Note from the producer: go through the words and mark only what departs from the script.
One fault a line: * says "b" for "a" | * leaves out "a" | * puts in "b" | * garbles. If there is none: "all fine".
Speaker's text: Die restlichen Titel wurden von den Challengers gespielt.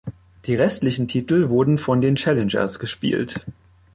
all fine